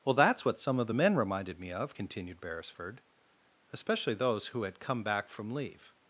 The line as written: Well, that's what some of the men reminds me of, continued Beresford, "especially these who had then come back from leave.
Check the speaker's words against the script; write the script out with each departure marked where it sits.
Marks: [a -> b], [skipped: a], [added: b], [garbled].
Well, that's what some of the men [reminds -> reminded] me of, continued Beresford, "especially [these -> those] who had [skipped: then] come back from leave.